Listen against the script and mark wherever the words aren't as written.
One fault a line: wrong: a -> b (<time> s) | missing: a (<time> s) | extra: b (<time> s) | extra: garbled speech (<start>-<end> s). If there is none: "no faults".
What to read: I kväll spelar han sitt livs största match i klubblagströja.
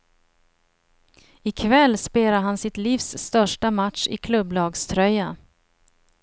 no faults